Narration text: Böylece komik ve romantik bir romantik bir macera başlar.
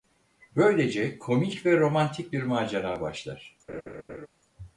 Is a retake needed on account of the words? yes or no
yes